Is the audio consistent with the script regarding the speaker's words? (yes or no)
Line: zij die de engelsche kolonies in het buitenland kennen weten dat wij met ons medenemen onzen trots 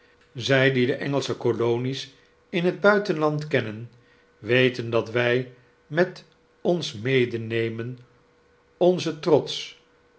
yes